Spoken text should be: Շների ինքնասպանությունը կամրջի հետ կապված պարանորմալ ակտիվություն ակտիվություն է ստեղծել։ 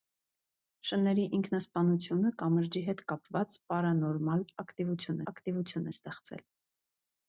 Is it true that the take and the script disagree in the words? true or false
false